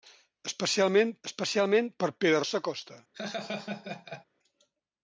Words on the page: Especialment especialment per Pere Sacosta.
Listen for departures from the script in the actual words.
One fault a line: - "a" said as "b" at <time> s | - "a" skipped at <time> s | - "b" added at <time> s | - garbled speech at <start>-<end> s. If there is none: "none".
none